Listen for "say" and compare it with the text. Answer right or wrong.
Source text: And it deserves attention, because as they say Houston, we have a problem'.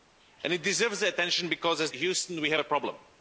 wrong